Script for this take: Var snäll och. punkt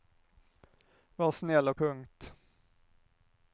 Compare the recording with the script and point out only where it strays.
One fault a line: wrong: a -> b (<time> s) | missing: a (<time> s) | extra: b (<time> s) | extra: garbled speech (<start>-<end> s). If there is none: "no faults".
no faults